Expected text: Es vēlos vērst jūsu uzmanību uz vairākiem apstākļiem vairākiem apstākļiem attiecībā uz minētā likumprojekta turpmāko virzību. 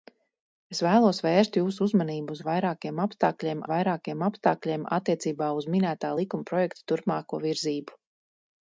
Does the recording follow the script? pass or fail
pass